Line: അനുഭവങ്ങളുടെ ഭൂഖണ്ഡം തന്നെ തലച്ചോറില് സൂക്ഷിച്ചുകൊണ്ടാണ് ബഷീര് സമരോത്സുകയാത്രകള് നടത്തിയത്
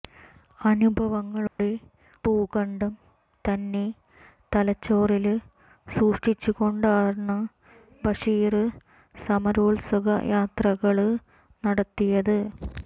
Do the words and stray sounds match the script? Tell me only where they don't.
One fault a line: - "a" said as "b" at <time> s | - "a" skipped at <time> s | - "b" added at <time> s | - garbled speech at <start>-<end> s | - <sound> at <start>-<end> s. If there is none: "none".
- dropout at 1.5-1.6 s